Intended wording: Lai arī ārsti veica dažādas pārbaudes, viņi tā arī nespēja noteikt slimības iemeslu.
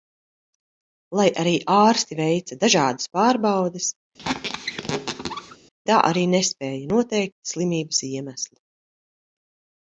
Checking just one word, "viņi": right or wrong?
wrong